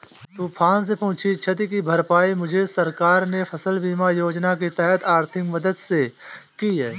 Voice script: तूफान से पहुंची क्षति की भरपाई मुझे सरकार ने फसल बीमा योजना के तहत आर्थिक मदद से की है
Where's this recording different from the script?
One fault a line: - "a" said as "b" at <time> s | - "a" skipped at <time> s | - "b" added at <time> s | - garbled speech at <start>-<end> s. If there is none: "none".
none